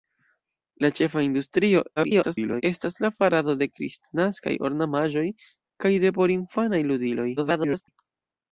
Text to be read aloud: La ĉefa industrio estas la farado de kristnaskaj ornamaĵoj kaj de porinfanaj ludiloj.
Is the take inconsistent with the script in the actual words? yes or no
yes